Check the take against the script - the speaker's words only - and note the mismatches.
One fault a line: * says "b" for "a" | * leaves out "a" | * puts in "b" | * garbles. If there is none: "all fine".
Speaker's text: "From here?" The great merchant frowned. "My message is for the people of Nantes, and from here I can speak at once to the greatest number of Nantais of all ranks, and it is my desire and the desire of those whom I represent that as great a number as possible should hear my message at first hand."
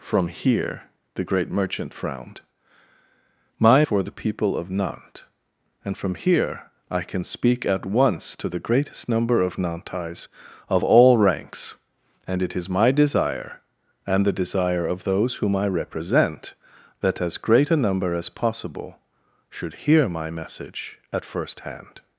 * leaves out "message is"